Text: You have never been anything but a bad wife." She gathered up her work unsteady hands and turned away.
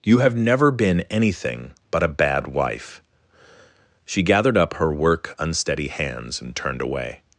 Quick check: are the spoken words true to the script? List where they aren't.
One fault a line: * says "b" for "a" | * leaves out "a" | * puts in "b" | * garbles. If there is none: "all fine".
all fine